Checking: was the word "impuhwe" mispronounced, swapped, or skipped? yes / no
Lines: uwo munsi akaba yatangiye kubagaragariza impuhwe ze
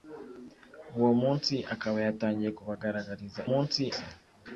yes